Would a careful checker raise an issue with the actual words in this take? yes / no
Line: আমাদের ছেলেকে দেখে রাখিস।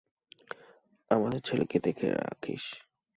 no